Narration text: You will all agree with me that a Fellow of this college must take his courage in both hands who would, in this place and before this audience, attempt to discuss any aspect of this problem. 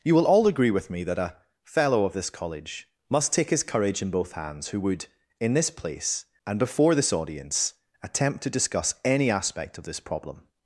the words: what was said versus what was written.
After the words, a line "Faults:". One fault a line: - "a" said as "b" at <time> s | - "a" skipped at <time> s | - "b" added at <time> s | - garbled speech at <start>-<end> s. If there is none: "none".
You will all agree with me that a Fellow of this college must take his courage in both hands who would, in this place and before this audience, attempt to discuss any aspect of this problem.
Faults:
none